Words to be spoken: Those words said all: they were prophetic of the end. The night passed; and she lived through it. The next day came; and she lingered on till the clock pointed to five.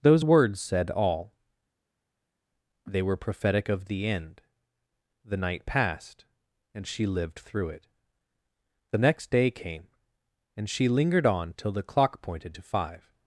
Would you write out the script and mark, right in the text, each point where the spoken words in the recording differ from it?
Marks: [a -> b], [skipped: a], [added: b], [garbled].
Those words said all: they were prophetic of the end. The night passed; and she lived through it. The next day came; and she lingered on till the clock pointed to five.